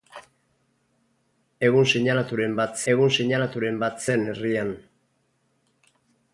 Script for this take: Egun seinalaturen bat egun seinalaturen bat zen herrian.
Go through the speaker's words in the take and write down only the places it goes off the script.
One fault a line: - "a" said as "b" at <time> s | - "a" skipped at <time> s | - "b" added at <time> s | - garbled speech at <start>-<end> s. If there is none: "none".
none